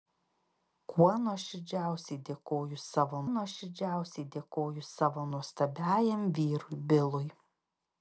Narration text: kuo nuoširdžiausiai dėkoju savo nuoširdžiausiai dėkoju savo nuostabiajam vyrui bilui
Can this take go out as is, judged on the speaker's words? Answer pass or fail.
pass